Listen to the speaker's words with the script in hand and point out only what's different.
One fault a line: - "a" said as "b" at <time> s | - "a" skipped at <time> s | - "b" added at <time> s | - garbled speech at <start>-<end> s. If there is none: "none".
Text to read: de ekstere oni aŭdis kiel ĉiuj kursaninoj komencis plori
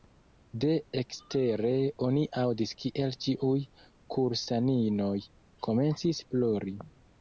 none